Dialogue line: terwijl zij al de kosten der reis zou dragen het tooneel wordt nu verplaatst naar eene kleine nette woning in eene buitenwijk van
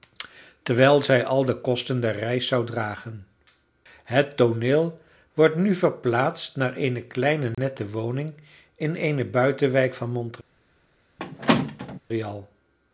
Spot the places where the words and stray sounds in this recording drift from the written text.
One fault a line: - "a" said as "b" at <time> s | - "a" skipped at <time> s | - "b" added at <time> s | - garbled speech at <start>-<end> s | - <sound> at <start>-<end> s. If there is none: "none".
- dropout at 7.5-7.6 s
- squeak at 11.2-12.0 s